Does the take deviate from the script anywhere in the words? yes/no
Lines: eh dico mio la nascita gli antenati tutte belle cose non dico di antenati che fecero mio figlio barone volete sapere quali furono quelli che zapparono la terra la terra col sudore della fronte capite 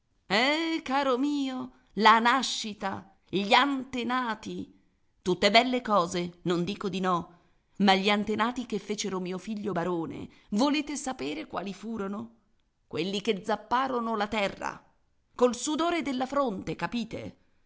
yes